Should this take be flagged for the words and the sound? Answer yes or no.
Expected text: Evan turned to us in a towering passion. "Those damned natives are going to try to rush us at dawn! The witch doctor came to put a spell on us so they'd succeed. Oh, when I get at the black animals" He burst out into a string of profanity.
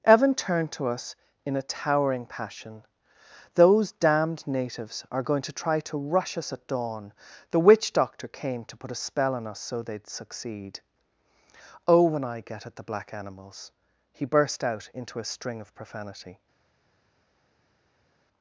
no